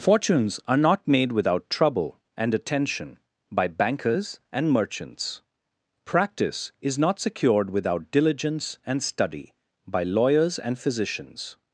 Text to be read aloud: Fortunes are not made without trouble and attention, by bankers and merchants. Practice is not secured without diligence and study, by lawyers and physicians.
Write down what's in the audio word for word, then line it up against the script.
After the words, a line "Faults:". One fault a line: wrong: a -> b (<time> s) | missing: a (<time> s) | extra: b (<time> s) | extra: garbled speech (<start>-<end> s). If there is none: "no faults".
Fortunes are not made without trouble and attention, by bankers and merchants. Practice is not secured without diligence and study, by lawyers and physicians.
Faults:
no faults